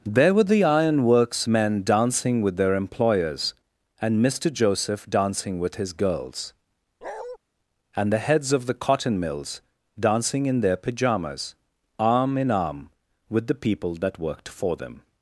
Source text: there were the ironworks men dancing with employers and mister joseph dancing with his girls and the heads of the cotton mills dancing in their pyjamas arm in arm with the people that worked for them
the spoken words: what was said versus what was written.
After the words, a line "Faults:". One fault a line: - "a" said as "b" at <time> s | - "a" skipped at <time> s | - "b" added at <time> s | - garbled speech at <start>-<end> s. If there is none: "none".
there were the ironworks men dancing with their employers and mister joseph dancing with his girls and the heads of the cotton mills dancing in their pyjamas arm in arm with the people that worked for them
Faults:
- "their" added at 2.6 s